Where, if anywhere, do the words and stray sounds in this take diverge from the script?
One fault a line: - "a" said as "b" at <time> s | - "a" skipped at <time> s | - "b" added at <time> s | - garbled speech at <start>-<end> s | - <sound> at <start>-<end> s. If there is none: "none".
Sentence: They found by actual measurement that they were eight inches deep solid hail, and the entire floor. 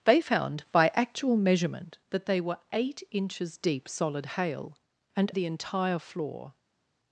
none